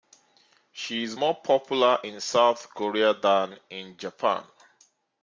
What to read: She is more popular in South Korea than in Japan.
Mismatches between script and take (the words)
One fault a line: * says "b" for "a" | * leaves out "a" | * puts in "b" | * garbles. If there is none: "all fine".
all fine